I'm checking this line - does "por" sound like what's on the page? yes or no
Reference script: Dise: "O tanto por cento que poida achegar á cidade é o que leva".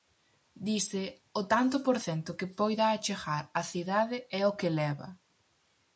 yes